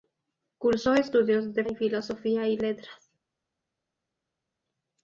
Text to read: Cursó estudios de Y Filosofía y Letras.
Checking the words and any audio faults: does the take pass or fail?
pass